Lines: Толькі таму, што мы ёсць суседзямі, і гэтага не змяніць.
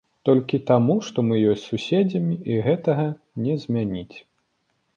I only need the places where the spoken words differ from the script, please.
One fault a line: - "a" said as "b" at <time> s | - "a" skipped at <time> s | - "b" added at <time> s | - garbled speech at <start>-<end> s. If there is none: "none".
none